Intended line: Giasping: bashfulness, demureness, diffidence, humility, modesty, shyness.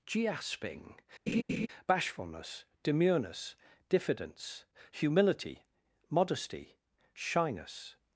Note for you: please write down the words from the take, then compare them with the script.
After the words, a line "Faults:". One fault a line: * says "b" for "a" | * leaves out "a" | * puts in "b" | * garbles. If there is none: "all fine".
Giasping: bashfulness, demureness, diffidence, humility, modesty, shyness.
Faults:
all fine